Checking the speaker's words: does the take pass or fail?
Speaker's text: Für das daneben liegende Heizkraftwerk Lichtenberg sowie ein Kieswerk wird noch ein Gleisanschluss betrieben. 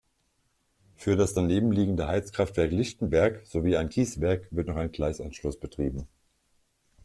pass